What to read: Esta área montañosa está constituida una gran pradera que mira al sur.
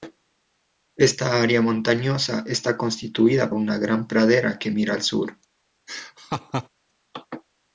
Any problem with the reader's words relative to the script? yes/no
no